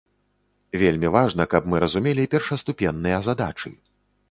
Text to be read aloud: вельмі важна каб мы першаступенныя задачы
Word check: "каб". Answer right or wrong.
right